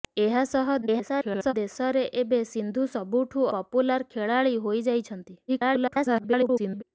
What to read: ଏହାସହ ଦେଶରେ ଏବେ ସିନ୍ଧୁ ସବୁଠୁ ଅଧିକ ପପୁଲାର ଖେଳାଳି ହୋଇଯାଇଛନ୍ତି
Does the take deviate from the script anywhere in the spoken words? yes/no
yes